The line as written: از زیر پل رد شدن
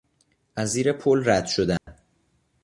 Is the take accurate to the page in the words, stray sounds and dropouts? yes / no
no